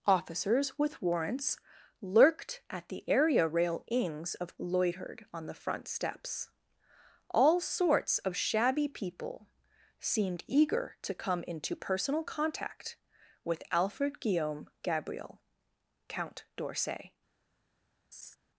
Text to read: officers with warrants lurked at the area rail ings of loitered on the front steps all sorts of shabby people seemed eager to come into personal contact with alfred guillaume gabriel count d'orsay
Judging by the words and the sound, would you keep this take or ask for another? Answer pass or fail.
fail